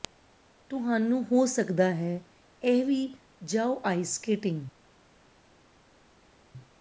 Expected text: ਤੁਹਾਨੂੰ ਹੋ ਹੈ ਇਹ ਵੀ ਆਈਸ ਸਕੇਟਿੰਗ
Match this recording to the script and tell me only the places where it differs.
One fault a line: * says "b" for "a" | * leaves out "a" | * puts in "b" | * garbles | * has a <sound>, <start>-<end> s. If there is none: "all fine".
* puts in "ਸਕਦਾ"
* puts in "ਜਾਓ"